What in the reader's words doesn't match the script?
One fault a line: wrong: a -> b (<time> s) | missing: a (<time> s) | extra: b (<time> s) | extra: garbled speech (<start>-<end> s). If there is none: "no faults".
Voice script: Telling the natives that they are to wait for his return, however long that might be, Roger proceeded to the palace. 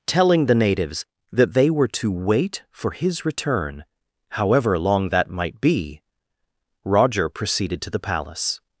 wrong: are -> were (1.7 s)